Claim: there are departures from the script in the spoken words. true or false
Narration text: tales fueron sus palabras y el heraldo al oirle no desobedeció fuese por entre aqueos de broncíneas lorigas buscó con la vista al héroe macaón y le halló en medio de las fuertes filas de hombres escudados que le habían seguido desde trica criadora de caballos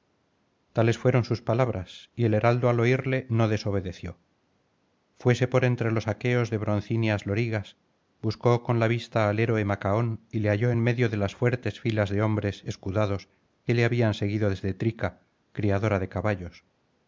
true